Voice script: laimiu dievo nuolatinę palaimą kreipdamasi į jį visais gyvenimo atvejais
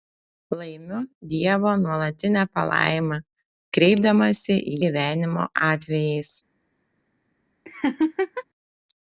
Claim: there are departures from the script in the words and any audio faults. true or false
true